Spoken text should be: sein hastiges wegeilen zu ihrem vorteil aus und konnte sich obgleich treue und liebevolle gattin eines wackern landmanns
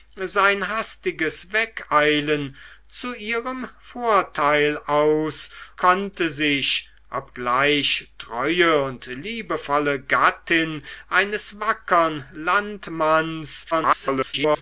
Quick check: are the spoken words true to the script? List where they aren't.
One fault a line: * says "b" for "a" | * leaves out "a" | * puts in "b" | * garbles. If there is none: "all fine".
* leaves out "und"
* garbles